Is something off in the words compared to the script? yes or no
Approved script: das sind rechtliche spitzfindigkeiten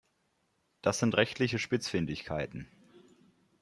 no